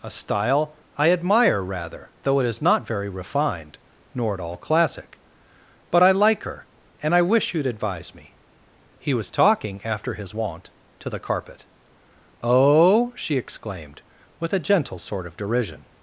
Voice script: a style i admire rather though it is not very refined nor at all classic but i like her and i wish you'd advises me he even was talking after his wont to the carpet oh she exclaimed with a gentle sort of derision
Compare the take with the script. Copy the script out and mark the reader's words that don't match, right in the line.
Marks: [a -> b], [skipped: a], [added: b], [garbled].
a style i admire rather though it is not very refined nor at all classic but i like her and i wish you'd [advises -> advise] me he [skipped: even] was talking after his wont to the carpet oh she exclaimed with a gentle sort of derision